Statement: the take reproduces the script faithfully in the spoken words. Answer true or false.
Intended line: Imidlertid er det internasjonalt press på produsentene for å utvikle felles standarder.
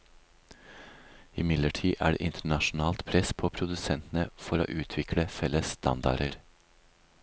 true